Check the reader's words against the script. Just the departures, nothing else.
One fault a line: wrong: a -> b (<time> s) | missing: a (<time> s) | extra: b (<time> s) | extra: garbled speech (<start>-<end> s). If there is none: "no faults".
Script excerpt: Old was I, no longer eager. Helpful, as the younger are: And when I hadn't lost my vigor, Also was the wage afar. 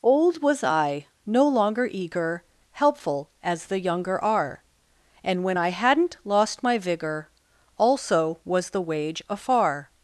no faults